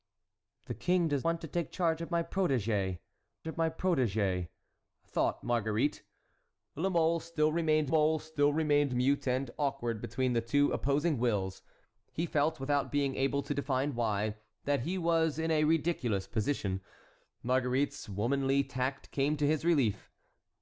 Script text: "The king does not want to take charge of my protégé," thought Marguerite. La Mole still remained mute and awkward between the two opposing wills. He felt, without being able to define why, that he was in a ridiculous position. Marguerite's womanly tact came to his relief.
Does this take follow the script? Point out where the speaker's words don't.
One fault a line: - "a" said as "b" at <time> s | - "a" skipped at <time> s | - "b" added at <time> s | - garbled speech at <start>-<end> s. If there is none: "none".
- "not" skipped at 1.3 s
- "of my protégé" added at 3.5 s
- "Mole still remained" added at 7.9 s